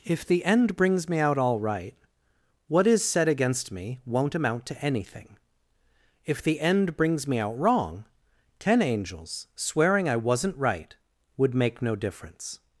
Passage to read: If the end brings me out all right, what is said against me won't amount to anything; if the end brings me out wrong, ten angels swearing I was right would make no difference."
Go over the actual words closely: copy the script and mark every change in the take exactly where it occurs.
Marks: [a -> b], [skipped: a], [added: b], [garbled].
If the end brings me out all right, what is said against me won't amount to anything; if the end brings me out wrong, ten angels swearing I [was -> wasn't] right would make no difference."